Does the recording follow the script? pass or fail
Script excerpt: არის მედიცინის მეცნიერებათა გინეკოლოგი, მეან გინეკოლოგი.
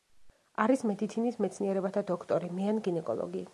fail